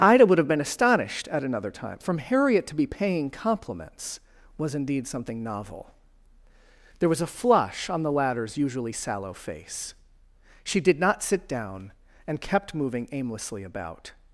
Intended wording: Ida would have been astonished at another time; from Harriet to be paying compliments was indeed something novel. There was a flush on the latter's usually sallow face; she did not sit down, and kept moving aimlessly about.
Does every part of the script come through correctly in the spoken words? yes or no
yes